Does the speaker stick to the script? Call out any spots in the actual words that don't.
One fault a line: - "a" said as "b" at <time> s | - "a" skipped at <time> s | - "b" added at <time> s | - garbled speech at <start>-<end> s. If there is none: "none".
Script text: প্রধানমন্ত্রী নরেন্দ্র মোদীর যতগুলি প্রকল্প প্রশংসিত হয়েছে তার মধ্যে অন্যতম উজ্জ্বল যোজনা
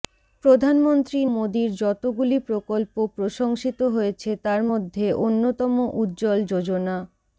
- "নরেন্দ্র" skipped at 1.2 s